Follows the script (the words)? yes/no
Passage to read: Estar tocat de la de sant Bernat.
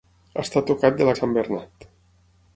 yes